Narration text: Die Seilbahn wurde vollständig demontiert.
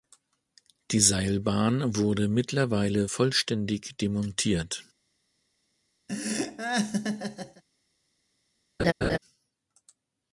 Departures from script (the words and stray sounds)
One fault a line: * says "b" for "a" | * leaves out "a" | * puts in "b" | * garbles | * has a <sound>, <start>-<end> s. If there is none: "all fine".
* puts in "mittlerweile"
* has a laugh, 6.1-7.6 s
* has a laugh, 8.8-9.2 s